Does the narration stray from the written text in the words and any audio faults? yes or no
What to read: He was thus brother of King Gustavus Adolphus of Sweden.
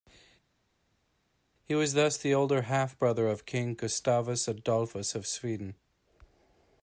yes